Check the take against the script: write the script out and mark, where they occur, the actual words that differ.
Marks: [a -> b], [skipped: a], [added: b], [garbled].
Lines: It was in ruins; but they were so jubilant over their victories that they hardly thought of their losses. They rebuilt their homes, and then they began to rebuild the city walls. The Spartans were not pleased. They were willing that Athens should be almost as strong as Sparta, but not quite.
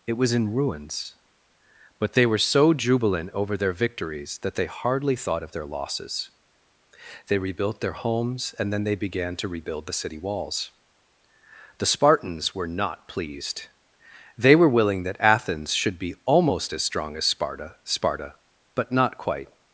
It was in ruins; but they were so jubilant over their victories that they hardly thought of their losses. They rebuilt their homes, and then they began to rebuild the city walls. The Spartans were not pleased. They were willing that Athens should be almost as strong as Sparta, [added: Sparta] but not quite.